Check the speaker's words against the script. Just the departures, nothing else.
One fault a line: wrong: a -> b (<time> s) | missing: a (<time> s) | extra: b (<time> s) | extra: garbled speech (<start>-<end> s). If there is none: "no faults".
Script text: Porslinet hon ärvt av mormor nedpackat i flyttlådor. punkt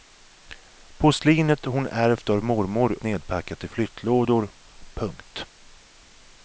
no faults